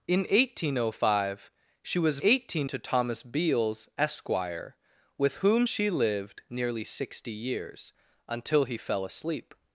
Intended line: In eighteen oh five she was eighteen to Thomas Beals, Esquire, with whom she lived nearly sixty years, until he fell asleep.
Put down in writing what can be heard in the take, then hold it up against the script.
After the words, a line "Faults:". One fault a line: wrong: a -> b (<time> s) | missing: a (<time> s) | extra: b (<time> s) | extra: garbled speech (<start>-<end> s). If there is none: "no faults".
In eighteen oh five she was eighteen to Thomas Beals, Esquire, with whom she lived nearly sixty years, until he fell asleep.
Faults:
no faults